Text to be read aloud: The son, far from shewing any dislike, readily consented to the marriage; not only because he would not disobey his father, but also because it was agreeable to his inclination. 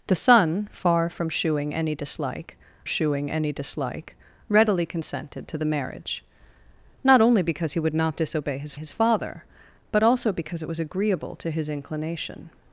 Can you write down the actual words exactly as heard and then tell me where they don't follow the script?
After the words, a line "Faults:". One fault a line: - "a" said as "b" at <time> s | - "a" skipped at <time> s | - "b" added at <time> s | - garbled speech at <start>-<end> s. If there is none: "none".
The son, far from shewing any dislike shewing any dislike, readily consented to the marriage; not only because he would not disobey his his father, but also because it was agreeable to his inclination.
Faults:
- "shewing any dislike" added at 2.8 s
- "his" added at 8.8 s